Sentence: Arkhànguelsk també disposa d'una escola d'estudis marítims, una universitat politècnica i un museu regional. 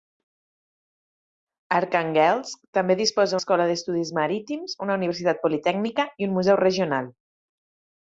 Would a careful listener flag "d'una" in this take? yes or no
yes